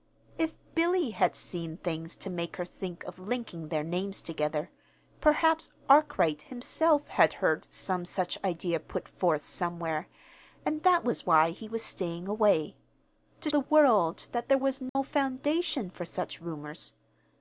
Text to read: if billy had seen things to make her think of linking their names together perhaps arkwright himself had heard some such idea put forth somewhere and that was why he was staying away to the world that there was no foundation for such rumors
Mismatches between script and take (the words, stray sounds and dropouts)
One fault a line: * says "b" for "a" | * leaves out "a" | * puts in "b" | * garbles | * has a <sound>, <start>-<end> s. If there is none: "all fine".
* has a dropout, 14.9-15.0 s